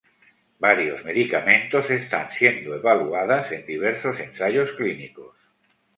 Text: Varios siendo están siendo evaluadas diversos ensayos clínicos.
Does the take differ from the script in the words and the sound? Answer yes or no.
yes